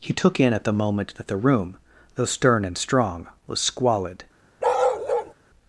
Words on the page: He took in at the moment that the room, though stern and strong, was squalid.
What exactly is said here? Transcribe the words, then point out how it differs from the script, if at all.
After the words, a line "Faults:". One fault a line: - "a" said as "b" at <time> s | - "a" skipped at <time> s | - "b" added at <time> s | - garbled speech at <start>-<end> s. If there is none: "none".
He took in at the moment that the room, though stern and strong, was squalid.
Faults:
none